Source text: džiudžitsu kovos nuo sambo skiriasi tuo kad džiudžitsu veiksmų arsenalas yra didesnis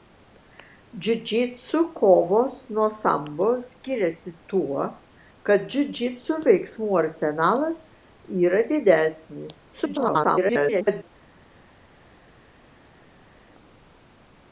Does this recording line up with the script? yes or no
no